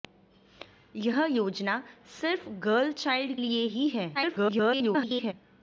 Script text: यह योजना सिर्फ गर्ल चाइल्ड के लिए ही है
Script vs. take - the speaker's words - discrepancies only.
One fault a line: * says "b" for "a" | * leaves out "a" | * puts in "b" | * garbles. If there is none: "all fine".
* leaves out "के"
* garbles